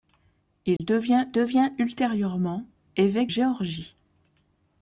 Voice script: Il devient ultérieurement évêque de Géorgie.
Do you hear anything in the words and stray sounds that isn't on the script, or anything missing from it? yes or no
yes